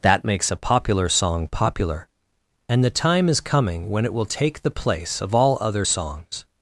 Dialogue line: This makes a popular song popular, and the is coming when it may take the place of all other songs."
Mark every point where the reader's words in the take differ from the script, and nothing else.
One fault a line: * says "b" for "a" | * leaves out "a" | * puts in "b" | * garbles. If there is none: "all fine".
* says "That" for "This"
* puts in "time"
* says "will" for "may"